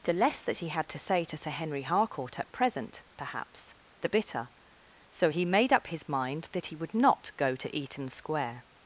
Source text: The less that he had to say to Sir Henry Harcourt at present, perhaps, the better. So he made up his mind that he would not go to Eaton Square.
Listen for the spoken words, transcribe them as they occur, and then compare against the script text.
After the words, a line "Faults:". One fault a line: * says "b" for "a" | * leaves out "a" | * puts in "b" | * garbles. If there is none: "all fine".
The less that he had to say to Sir Henry Harcourt at present, perhaps, the bitter. So he made up his mind that he would not go to Eaton Square.
Faults:
* says "bitter" for "better"